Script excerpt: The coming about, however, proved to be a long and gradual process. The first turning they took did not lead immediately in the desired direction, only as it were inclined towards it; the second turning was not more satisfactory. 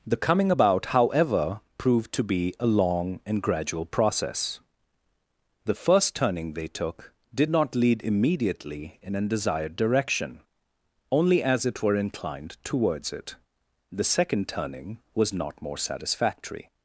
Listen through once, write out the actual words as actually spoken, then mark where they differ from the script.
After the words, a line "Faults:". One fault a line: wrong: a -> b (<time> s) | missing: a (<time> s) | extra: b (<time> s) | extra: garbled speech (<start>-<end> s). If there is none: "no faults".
The coming about, however, proved to be a long and gradual process. The first turning they took did not lead immediately in an desired direction, only as it were inclined towards it; the second turning was not more satisfactory.
Faults:
wrong: the -> an (9.2 s)